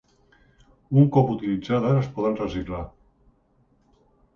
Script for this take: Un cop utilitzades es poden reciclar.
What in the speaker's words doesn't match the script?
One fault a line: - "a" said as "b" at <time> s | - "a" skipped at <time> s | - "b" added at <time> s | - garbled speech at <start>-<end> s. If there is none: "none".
none